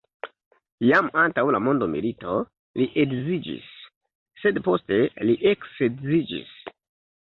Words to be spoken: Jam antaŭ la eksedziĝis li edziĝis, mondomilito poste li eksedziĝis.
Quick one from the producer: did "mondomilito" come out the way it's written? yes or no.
no